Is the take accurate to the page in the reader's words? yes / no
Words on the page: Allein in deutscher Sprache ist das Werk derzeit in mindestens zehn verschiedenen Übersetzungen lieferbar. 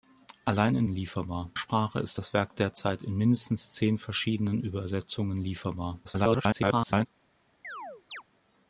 no